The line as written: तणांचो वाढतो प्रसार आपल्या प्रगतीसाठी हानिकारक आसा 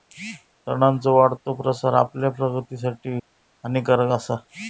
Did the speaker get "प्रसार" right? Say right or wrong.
right